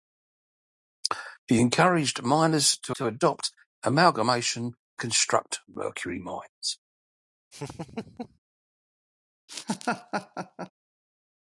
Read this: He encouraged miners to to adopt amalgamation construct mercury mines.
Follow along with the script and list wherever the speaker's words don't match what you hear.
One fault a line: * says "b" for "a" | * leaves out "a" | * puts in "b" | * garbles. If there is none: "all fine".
all fine